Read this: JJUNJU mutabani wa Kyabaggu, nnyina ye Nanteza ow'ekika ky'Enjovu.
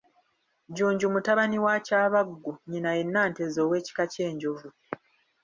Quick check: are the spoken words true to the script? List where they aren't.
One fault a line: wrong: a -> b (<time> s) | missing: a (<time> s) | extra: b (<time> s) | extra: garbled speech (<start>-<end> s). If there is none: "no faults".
no faults